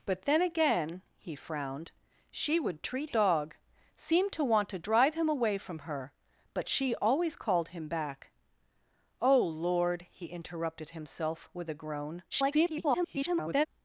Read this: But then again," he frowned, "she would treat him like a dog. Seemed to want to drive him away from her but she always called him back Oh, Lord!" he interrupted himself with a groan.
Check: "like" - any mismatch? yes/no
yes